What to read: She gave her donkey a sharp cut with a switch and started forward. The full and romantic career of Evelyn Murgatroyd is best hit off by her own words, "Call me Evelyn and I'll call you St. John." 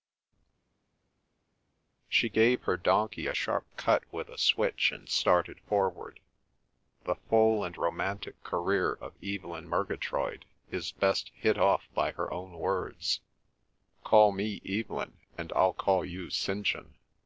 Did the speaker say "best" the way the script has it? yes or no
yes